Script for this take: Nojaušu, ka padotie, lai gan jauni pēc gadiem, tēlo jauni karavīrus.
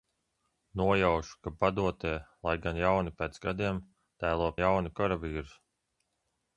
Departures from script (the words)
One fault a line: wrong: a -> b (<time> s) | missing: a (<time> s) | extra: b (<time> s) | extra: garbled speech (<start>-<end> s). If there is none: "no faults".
no faults